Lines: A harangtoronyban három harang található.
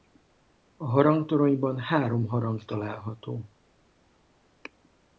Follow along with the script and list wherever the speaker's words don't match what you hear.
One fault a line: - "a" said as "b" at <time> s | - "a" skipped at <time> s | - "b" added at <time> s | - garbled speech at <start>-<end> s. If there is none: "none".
none